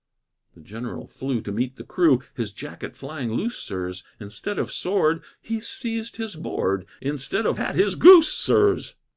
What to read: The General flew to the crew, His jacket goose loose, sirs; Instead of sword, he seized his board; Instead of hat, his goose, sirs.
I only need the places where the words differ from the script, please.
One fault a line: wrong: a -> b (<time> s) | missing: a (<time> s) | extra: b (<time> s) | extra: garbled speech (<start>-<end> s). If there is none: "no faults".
extra: meet (1.5 s)
wrong: goose -> flying (3.0 s)